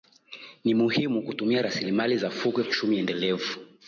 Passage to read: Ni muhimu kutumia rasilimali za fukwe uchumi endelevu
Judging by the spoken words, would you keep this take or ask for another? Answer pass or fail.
pass